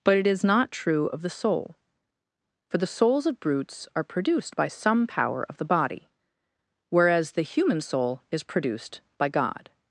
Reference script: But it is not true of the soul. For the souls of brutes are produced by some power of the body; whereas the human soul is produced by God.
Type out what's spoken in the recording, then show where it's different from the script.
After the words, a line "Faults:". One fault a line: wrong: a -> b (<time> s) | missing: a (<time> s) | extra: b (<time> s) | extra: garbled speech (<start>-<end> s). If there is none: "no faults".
But it is not true of the soul. For the souls of brutes are produced by some power of the body; whereas the human soul is produced by God.
Faults:
no faults